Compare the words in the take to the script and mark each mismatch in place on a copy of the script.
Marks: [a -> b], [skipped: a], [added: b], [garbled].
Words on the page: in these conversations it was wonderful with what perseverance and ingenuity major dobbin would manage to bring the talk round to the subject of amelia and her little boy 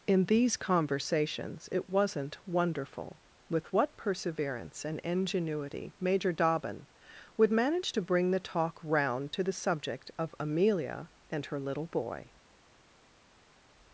in these conversations it [was -> wasn't] wonderful with what perseverance and ingenuity major dobbin would manage to bring the talk round to the subject of amelia and her little boy